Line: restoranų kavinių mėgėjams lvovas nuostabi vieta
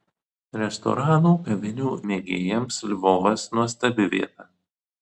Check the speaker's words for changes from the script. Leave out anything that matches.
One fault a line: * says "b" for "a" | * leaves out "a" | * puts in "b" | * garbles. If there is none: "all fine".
all fine